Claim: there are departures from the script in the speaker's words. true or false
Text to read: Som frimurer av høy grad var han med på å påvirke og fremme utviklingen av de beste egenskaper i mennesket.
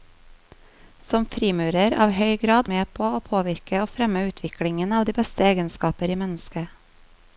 true